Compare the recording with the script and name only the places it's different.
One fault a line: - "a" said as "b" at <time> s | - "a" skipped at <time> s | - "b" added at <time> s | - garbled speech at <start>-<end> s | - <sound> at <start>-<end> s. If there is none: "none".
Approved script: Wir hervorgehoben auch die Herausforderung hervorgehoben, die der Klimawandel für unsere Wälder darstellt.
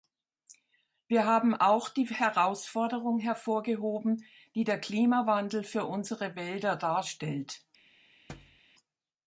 - "hervorgehoben" said as "haben" at 1.3 s
- thud at 8.3-8.6 s